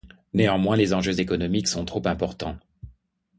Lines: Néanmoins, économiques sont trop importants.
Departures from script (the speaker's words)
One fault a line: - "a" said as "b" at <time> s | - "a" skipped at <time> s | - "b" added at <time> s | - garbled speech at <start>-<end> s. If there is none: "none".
- "les enjeux" added at 0.8 s